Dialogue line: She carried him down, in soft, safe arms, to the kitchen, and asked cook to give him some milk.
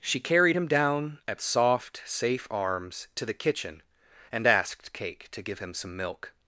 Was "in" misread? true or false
true